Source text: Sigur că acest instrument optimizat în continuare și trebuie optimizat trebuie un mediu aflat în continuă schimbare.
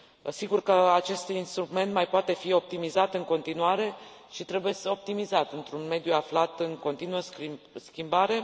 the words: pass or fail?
fail